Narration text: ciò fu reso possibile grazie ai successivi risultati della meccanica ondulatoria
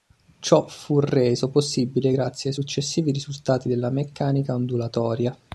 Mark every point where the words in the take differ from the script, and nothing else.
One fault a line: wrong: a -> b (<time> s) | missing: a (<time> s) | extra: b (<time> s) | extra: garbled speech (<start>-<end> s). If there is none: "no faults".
no faults